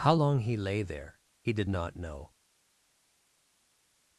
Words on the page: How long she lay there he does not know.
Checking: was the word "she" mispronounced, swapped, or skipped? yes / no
yes